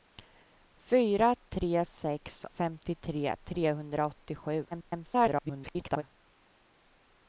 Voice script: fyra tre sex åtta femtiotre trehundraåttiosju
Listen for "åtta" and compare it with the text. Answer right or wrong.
wrong